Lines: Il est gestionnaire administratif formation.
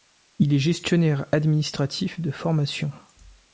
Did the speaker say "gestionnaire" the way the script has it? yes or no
yes